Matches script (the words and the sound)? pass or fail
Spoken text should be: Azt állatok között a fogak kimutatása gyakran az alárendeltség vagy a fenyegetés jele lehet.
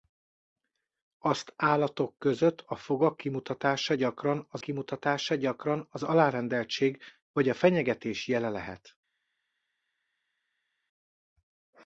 fail